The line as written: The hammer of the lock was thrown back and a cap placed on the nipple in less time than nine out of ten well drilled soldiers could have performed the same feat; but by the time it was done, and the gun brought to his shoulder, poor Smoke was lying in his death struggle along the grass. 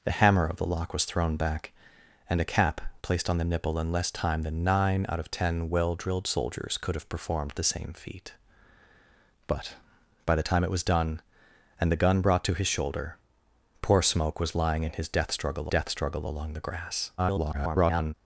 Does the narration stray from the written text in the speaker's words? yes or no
yes